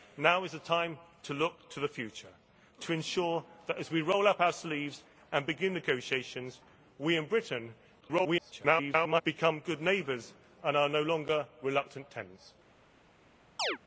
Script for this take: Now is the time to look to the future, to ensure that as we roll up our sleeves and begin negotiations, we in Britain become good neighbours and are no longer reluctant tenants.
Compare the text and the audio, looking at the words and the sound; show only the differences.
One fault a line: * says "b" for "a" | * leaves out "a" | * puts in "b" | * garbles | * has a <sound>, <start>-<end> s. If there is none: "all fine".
* garbles
* has a chirp, 13.6-13.8 s